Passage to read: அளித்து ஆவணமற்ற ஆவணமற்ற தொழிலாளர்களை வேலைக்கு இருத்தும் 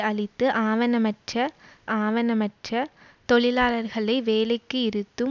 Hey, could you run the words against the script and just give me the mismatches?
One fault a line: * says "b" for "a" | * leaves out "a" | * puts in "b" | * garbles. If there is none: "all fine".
all fine